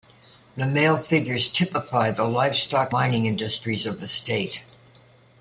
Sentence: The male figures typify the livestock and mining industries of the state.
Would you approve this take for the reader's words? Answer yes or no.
no